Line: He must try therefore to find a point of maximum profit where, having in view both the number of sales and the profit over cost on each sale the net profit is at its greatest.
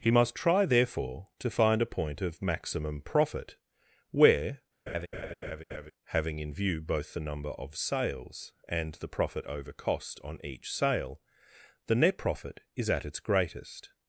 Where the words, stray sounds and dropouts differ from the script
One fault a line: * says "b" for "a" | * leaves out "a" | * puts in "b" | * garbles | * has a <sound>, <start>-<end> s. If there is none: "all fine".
* has a laugh, 4.9-5.9 s